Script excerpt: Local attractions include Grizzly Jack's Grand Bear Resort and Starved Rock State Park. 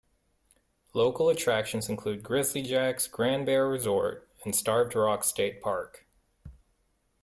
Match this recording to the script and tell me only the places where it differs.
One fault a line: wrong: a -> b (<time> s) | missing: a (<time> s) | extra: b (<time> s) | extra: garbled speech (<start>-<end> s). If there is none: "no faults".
no faults